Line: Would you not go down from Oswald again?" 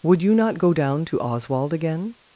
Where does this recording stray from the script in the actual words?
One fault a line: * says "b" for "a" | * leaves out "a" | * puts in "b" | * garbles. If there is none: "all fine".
* says "to" for "from"